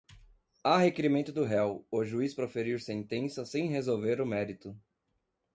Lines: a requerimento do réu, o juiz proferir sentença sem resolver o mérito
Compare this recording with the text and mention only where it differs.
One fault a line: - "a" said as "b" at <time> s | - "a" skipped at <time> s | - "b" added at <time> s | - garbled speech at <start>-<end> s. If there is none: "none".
none